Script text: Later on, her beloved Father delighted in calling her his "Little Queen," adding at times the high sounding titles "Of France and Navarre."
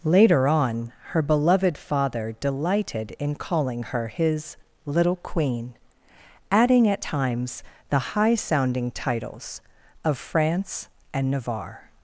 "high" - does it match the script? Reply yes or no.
yes